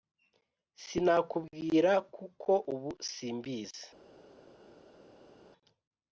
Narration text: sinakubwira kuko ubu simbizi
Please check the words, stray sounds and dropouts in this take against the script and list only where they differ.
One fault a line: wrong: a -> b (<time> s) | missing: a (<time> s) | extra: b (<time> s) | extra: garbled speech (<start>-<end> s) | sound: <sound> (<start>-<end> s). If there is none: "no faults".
no faults